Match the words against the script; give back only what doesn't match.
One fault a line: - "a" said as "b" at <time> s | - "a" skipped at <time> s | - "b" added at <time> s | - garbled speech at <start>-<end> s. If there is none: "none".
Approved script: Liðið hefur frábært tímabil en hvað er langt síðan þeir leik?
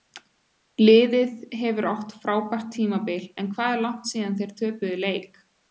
- "átt" added at 1.9 s
- "töpuðu" added at 4.6 s